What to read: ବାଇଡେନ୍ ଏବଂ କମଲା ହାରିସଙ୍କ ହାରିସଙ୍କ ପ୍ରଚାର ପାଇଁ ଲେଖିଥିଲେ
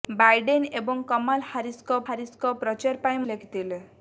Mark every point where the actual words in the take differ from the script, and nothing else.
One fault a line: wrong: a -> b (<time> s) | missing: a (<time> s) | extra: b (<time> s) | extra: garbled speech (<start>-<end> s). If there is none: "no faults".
no faults